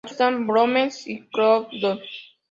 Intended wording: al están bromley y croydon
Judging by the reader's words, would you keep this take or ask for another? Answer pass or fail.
pass